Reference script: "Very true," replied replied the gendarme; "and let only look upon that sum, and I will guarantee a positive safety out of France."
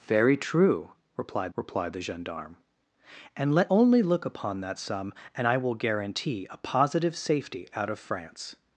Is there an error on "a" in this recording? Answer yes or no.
no